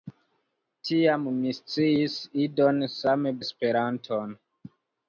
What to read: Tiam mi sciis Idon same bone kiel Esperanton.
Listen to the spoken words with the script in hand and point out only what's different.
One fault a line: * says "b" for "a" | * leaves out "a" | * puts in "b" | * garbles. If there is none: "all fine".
* leaves out "bone kiel"